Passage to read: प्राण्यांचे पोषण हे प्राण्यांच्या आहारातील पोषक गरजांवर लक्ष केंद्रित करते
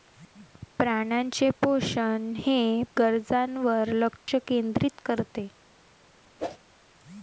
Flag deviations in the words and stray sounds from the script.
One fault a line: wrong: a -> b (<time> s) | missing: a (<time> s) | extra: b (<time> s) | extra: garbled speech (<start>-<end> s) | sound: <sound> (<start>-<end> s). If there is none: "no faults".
missing: प्राण्यांच्या आहारातील पोषक (2.8 s)
sound: dropout (4.2-4.3 s)
sound: whoosh (6.4-6.6 s)